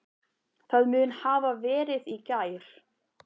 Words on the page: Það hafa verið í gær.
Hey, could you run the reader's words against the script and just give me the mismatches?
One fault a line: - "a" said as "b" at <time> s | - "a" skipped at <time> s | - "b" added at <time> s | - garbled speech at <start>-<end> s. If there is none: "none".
- "mun" added at 0.9 s